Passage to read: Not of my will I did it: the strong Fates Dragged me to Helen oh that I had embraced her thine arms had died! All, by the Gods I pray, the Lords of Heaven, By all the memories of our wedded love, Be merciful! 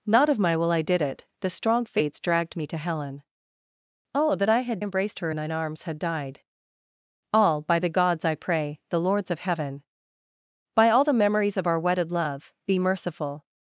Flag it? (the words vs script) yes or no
no